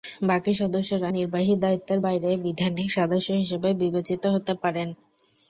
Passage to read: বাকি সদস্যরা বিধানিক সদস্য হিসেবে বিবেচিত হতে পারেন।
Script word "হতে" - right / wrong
right